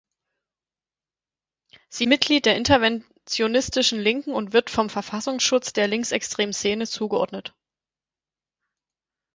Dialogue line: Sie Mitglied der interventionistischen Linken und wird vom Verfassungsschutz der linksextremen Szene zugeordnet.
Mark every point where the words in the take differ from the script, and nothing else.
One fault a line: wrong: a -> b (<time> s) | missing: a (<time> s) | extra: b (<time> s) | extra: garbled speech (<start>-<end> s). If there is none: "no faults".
no faults